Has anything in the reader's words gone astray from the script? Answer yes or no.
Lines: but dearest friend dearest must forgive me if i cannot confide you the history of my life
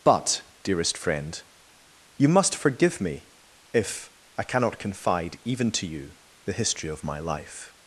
yes